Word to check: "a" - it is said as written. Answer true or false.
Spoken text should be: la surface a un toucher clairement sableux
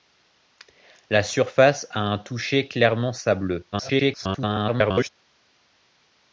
true